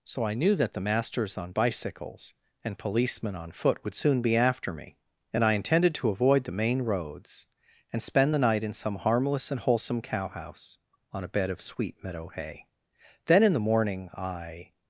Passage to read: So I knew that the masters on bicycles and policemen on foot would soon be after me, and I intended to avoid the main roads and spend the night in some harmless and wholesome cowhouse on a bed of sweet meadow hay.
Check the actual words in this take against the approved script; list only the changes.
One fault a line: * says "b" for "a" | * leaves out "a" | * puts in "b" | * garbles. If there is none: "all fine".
* puts in "Then in the morning I"